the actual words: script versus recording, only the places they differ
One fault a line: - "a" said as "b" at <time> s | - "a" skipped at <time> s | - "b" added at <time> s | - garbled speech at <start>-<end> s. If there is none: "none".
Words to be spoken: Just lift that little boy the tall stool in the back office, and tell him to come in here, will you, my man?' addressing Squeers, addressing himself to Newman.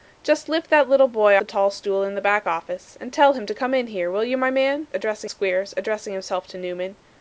none